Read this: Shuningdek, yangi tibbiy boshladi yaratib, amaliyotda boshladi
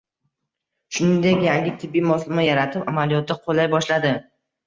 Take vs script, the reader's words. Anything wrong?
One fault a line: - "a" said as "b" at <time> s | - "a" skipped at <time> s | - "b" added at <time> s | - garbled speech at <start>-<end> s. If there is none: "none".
- "boshladi" said as "moslama" at 2.1 s
- "qo‘llay" added at 3.5 s